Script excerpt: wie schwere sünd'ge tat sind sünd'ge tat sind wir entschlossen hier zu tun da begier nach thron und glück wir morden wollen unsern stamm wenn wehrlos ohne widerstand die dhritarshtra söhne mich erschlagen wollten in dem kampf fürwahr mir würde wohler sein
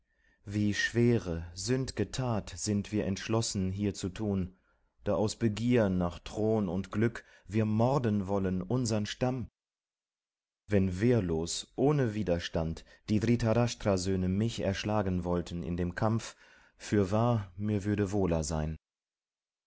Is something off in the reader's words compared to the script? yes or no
yes